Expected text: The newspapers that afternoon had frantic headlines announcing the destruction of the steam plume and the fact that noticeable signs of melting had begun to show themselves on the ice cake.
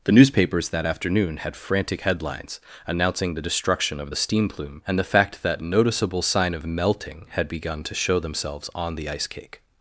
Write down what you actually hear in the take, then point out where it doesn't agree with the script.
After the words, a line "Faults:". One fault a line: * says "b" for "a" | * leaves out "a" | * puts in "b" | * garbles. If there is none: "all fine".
The newspapers that afternoon had frantic headlines announcing the destruction of the steam plume and the fact that noticeable sign of melting had begun to show themselves on the ice cake.
Faults:
* says "sign" for "signs"